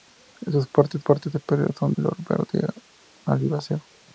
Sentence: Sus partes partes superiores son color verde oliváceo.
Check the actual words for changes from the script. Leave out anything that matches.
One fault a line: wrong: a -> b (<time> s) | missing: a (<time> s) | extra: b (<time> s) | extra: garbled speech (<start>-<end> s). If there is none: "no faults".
no faults